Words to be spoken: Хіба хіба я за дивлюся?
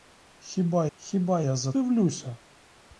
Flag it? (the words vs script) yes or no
no